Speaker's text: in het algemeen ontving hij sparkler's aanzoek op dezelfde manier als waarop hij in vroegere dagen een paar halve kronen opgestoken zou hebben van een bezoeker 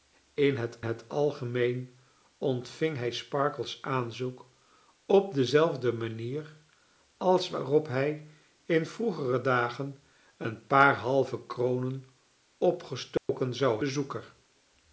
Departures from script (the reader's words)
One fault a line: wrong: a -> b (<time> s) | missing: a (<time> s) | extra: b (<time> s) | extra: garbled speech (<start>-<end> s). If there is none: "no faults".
extra: het (0.8 s)
missing: hebben van een (13.8 s)